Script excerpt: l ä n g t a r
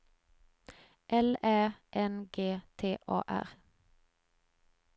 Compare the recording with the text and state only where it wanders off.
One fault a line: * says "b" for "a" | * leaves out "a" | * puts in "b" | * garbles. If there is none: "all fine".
all fine